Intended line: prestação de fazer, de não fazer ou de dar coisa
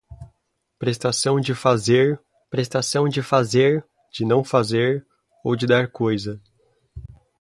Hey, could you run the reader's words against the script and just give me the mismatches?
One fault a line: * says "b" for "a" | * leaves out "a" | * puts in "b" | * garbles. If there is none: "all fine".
* puts in "prestação de fazer"